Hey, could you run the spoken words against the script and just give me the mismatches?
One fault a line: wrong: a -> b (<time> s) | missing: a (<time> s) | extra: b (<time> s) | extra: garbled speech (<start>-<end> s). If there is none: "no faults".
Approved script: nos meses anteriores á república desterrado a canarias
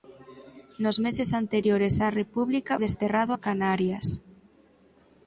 no faults